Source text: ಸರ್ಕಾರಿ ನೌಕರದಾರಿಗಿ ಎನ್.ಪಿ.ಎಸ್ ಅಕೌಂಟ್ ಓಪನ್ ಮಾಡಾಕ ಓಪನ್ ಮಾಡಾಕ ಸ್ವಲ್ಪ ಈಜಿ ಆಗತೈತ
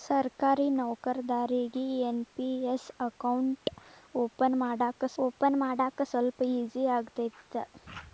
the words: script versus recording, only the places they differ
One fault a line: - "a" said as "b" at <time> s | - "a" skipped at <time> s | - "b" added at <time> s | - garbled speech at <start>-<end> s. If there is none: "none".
none